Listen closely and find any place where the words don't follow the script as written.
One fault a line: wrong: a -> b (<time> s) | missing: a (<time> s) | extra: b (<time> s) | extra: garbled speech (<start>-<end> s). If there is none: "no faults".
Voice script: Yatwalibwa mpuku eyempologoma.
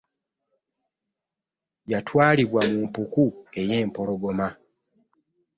extra: mu (2.7 s)